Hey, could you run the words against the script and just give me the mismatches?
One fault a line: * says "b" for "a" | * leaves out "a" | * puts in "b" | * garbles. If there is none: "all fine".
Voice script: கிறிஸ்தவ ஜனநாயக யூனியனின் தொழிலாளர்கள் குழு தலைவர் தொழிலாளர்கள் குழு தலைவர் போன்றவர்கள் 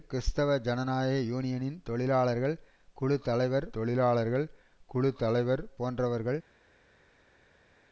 all fine